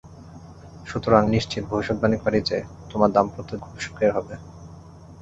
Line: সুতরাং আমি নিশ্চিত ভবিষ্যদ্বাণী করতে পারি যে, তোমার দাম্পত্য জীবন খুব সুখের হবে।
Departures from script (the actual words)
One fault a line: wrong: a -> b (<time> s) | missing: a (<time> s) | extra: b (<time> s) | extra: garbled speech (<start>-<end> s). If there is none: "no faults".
missing: আমি (1.2 s)
missing: করতে (2.2 s)
missing: জীবন (3.5 s)